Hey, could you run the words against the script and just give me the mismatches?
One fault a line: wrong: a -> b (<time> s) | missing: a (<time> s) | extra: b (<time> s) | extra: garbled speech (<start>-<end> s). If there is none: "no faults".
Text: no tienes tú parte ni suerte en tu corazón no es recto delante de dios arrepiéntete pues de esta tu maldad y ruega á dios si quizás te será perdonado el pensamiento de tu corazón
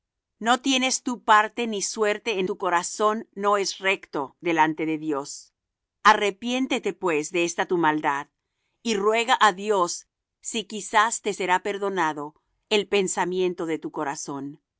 no faults